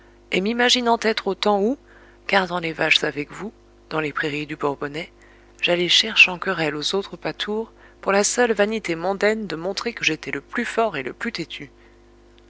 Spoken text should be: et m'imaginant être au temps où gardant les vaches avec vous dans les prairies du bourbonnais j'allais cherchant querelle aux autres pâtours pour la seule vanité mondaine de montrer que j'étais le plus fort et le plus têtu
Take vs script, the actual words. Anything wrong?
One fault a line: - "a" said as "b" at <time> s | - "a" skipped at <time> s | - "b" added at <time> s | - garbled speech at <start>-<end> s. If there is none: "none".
none